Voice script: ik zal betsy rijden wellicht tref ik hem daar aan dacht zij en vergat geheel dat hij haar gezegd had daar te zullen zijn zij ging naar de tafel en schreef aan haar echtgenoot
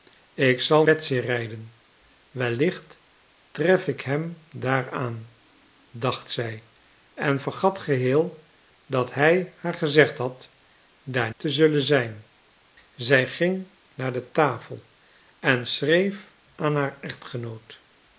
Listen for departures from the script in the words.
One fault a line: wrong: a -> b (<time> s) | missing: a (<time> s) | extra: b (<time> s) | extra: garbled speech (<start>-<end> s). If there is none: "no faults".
no faults